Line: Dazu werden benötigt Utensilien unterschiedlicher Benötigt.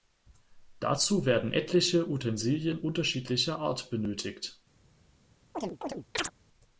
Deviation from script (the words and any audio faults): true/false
true